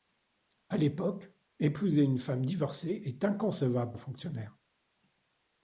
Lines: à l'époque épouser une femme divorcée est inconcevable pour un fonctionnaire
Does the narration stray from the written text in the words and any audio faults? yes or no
yes